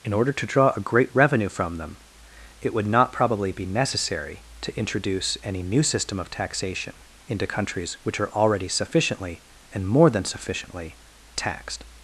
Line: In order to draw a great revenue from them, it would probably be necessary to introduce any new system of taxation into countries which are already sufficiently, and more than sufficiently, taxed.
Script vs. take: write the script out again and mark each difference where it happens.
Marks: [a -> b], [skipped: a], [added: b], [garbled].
In order to draw a great revenue from them, it would [added: not] probably be necessary to introduce any new system of taxation into countries which are already sufficiently, and more than sufficiently, taxed.